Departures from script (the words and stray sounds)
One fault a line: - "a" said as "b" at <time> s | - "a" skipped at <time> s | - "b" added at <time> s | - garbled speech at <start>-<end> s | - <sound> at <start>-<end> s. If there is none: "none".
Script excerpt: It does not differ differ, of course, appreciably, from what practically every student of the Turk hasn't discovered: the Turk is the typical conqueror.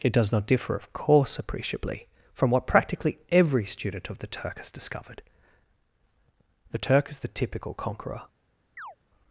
- "differ" skipped at 0.8 s
- "hasn't" said as "has" at 4.6 s
- chirp at 8.8-9.0 s